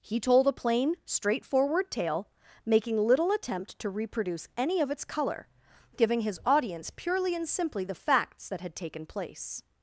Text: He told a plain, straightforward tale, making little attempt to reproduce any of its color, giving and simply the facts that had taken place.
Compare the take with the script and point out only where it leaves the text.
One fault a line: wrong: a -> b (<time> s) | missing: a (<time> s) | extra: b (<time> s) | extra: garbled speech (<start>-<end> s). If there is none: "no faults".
extra: his audience purely (6.2 s)